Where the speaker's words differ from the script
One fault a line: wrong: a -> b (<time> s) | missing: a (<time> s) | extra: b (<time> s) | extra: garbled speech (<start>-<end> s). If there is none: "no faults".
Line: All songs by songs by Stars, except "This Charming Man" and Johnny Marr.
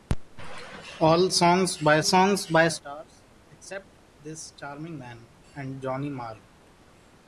no faults